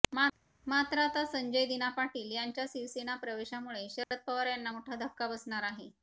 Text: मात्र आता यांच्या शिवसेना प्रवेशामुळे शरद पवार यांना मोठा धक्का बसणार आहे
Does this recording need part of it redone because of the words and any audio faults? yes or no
yes